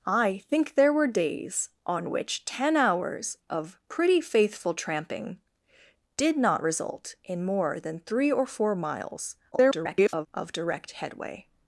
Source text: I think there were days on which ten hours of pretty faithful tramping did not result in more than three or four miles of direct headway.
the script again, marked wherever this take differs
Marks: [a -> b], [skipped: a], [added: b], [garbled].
I think there were days on which ten hours of pretty faithful tramping did not result in more than three or four miles [garbled] of direct headway.